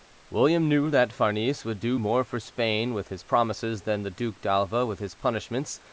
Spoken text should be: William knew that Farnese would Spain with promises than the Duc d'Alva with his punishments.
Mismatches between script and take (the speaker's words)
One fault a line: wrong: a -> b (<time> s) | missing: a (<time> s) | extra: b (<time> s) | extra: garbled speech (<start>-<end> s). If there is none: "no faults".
extra: do more for (1.8 s)
extra: his (3.1 s)